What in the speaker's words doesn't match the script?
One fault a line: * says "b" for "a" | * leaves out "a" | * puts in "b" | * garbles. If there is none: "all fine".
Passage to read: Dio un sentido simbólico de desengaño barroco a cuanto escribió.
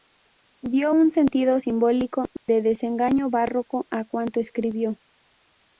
all fine